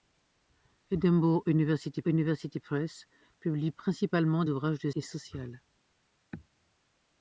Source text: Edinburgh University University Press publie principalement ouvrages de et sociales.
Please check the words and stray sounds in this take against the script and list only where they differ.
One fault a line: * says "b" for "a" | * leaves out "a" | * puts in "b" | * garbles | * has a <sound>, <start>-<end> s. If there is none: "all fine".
all fine